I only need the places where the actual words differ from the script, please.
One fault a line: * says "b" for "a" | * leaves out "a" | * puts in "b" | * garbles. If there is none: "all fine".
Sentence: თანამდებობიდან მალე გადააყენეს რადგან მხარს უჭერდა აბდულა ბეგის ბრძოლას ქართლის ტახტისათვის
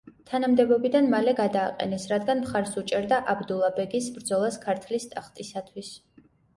all fine